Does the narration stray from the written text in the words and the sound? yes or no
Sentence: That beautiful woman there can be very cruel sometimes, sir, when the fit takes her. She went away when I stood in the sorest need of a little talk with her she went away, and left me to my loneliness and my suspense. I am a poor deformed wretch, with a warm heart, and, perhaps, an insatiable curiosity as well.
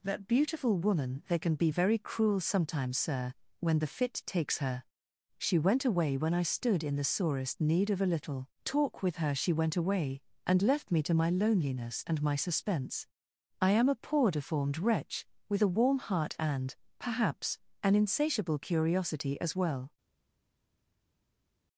yes